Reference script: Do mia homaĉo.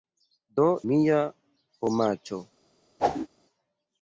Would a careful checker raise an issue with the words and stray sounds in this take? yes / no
yes